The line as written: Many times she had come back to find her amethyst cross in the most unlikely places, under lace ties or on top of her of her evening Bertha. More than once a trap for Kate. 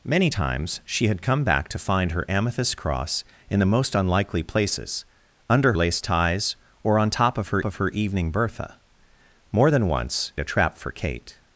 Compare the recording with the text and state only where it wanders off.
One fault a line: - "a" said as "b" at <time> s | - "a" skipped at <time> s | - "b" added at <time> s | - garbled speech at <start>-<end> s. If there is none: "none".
none